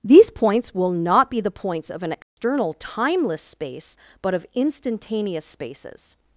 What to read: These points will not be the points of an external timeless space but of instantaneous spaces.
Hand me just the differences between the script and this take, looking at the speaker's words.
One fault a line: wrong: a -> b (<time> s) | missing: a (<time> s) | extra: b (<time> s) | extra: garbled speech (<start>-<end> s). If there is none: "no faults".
no faults